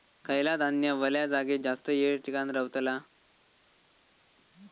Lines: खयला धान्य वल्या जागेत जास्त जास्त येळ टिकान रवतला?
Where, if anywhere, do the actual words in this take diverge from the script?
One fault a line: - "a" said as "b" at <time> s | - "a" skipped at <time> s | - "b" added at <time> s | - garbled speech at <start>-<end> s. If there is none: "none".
- "जास्त" skipped at 1.9 s